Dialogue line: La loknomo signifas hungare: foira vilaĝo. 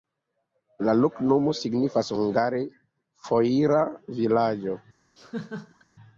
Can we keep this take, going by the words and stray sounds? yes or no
no